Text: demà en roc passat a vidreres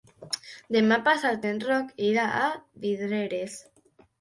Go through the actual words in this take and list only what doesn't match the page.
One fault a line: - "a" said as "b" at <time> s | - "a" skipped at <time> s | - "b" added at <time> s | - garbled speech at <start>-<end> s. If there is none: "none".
- "passat" added at 1.1 s
- "passat" said as "irà" at 2.1 s